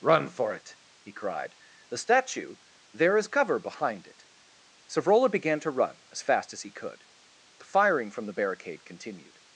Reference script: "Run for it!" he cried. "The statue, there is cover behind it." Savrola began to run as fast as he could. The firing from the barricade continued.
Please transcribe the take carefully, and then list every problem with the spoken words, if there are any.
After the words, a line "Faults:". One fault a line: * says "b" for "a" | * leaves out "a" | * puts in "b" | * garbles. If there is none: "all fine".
"Run for it!" he cried. "The statue, there is cover behind it." Savrola began to run as fast as he could. The firing from the barricade continued.
Faults:
all fine